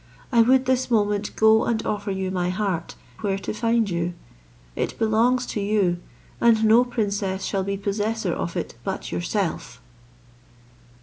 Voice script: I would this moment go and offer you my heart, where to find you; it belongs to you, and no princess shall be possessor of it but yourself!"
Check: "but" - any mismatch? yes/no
no